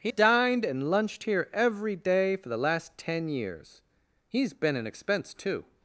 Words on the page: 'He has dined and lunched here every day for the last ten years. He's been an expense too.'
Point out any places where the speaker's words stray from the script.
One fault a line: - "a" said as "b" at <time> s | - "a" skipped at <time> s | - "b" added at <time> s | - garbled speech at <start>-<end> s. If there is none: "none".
- "has" skipped at 0.1 s